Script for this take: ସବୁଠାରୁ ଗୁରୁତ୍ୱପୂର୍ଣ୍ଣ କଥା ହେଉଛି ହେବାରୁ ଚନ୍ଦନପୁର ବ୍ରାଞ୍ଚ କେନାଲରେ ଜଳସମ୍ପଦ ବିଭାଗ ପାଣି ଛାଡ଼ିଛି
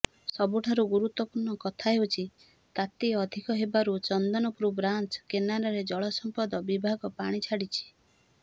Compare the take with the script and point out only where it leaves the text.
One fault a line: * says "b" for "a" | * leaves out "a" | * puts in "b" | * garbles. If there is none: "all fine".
* puts in "ତାତି ଅଧିକ"